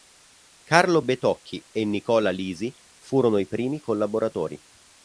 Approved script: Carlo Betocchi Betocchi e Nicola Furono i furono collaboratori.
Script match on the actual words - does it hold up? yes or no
no